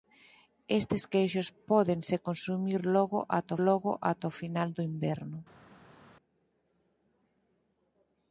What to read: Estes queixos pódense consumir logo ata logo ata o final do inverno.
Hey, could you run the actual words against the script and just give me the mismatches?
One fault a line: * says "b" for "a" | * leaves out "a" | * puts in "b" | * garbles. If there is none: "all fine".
all fine